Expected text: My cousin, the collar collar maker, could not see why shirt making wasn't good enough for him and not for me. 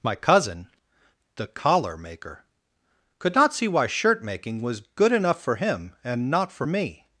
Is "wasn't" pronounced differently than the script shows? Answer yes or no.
yes